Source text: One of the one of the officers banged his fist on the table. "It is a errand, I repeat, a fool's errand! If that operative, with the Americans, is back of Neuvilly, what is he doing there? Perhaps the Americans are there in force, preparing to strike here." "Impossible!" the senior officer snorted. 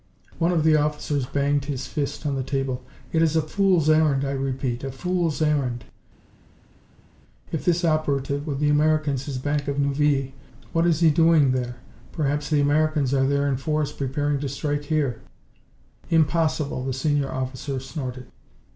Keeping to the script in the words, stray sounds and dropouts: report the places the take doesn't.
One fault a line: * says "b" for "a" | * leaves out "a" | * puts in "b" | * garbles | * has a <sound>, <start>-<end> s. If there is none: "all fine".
* leaves out "one of the"
* puts in "fool's"
* says "this" for "that"